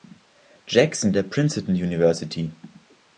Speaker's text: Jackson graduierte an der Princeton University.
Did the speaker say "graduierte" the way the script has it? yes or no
no